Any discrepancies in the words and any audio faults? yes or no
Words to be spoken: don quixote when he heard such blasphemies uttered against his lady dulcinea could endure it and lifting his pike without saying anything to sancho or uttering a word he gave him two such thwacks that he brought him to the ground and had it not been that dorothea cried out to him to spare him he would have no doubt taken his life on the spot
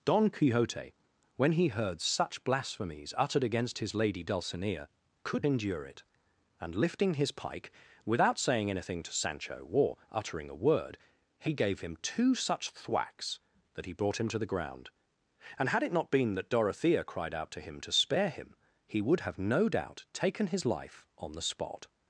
no